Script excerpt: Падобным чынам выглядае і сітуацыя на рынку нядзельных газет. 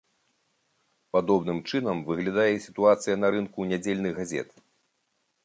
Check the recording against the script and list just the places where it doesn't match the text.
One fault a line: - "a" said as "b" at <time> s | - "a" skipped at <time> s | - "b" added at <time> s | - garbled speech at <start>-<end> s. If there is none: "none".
none